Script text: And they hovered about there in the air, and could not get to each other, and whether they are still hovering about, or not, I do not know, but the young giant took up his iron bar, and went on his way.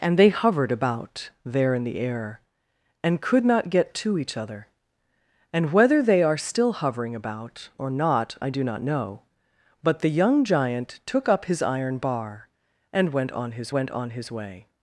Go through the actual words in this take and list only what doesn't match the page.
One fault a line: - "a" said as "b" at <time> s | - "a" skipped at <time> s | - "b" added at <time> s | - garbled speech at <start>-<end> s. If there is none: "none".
- "went on his" added at 13.7 s